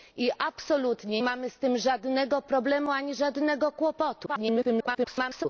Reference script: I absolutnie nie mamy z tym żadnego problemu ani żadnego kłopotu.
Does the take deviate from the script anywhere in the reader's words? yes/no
yes